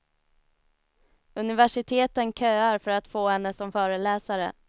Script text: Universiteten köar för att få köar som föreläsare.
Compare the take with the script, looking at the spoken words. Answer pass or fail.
fail